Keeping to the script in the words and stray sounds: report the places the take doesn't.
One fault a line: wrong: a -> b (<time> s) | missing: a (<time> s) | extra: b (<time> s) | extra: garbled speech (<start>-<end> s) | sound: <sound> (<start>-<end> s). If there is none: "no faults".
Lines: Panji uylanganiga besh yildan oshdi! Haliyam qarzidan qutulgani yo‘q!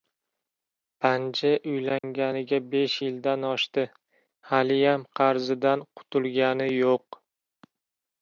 sound: dropout (2.0-2.0 s)